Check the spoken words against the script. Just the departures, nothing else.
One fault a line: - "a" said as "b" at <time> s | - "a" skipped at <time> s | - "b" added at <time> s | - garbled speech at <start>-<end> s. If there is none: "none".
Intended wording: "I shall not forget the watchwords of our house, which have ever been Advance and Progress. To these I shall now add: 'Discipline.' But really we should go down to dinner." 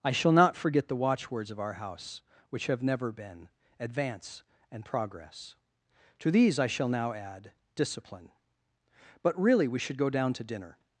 - "ever" said as "never" at 2.8 s